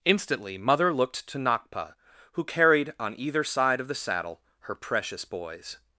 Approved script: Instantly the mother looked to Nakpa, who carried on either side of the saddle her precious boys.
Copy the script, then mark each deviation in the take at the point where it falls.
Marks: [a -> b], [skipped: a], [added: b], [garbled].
Instantly [skipped: the] mother looked to Nakpa, who carried on either side of the saddle her precious boys.